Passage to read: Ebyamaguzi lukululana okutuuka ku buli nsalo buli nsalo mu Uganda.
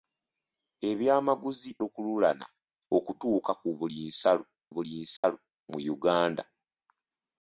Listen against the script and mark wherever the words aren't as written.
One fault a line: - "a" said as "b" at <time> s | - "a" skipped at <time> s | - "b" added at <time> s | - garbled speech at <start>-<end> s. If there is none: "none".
none